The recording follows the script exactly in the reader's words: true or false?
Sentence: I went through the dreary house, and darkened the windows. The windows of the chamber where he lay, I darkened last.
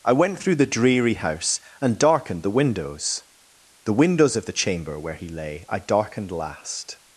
true